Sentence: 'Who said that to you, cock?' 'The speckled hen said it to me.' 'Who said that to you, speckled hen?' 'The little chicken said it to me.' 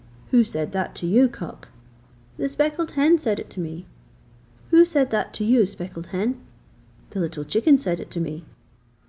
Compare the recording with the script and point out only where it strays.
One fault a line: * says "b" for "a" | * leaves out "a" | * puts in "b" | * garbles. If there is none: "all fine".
all fine